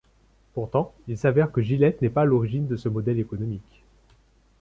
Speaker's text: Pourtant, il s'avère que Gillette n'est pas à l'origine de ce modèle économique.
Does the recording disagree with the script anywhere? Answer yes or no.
no